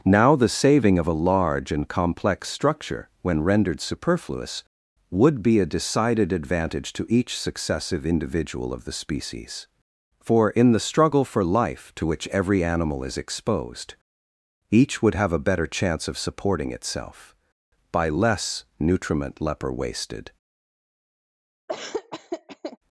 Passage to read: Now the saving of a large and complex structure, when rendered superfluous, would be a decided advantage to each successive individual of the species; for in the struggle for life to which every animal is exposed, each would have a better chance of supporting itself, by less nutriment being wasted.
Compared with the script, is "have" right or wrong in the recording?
right